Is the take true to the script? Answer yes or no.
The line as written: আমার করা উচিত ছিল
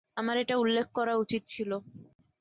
no